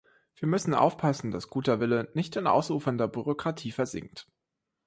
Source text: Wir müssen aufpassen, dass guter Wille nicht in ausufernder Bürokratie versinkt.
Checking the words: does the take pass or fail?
pass